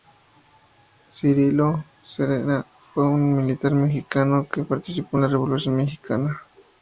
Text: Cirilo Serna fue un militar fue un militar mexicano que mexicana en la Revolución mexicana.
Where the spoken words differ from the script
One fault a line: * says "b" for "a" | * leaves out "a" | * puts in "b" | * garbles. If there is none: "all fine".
* leaves out "fue un militar"
* says "participó" for "mexicana"